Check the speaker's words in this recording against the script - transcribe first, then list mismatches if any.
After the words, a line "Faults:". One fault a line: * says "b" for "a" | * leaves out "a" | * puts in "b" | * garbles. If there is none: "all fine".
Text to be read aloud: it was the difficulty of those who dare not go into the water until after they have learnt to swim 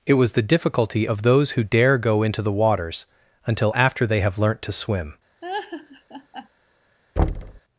it was the difficulty of those who dare go into the waters until after they have learnt to swim
Faults:
* leaves out "not"
* says "waters" for "water"